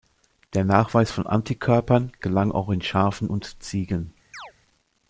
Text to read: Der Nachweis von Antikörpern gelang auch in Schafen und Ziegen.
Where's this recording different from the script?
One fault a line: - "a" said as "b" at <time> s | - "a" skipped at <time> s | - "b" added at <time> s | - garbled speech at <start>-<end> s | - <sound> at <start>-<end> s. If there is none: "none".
- chirp at 4.3-4.5 s